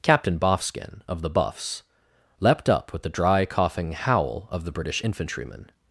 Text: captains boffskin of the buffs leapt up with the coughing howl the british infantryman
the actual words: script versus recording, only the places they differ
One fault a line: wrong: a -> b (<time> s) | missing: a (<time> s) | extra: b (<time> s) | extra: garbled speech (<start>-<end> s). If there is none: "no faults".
wrong: captains -> captain (0.0 s)
extra: dry (3.1 s)
extra: of (4.5 s)